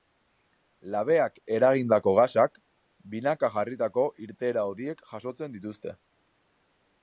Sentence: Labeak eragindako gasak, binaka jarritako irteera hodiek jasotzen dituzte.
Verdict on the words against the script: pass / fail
pass